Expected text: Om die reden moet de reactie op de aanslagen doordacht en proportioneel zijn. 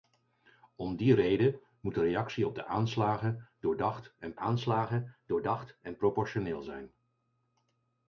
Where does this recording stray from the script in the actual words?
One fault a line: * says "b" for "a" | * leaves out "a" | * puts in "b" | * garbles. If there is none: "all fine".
* puts in "aanslagen doordacht en"